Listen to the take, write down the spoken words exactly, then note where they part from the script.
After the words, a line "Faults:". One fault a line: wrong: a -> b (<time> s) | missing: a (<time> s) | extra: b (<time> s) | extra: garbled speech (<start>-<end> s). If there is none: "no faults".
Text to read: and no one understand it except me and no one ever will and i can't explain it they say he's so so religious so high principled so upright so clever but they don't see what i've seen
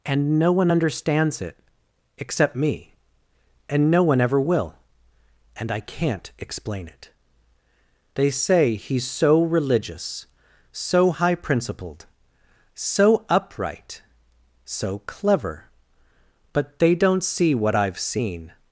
and no one understands it except me and no one ever will and i can't explain it they say he's so religious so high principled so upright so clever but they don't see what i've seen
Faults:
wrong: understand -> understands (0.7 s)
missing: so (9.4 s)